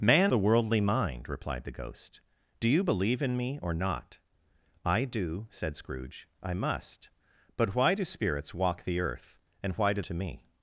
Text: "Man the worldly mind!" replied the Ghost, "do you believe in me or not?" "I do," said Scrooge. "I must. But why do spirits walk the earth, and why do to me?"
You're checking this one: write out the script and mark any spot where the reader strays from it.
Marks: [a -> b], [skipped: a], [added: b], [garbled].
"Man the worldly mind!" replied the Ghost, "do you believe in me or not?" "I do," said Scrooge. "I must. But why do spirits walk the earth, and why do to me?"